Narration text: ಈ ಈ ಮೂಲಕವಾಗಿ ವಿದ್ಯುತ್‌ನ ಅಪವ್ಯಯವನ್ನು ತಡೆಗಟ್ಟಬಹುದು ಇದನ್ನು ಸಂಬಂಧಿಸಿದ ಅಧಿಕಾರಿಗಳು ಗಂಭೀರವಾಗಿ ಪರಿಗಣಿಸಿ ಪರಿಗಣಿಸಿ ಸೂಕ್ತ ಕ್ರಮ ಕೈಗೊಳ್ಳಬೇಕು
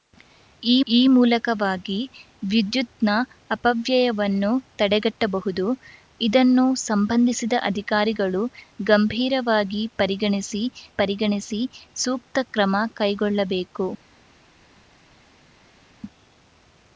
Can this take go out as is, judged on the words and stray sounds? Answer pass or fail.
pass